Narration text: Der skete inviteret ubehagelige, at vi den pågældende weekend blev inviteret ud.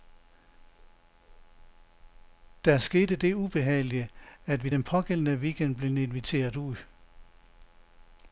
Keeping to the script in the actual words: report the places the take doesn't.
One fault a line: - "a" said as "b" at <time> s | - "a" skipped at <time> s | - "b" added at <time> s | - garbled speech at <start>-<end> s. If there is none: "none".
- "inviteret" said as "det" at 3.1 s